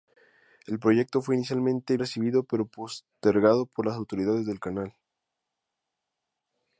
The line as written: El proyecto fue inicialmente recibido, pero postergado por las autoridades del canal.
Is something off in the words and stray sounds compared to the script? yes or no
no